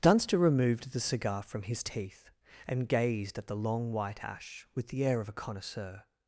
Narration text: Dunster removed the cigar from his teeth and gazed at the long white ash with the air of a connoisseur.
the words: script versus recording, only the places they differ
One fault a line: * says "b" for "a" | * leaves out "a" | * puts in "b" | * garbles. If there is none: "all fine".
all fine